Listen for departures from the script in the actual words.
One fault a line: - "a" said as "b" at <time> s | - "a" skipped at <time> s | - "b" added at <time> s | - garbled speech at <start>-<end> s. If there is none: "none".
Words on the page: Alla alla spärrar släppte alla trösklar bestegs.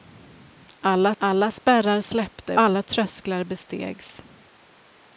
none